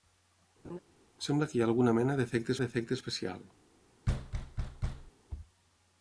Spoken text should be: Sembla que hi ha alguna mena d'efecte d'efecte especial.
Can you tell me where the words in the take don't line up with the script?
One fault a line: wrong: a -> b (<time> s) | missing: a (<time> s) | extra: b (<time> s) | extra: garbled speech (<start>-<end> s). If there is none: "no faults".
no faults